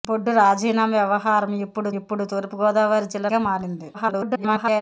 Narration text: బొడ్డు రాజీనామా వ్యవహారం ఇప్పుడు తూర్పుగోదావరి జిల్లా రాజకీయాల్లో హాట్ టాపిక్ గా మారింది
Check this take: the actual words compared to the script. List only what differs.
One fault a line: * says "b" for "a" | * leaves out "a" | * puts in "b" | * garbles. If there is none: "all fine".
* puts in "ఇప్పుడు"
* leaves out "రాజకీయాల్లో హాట్ టాపిక్"
* garbles